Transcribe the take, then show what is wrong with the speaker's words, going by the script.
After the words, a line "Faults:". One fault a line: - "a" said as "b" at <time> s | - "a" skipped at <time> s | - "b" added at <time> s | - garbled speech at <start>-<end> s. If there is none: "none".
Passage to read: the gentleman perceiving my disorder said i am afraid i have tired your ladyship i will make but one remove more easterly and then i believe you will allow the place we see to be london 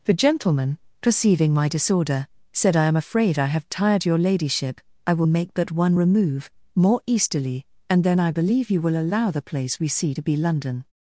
the gentleman perceiving my disorder said i am afraid i have tired your ladyship i will make but one remove more easterly and then i believe you will allow the place we see to be london
Faults:
none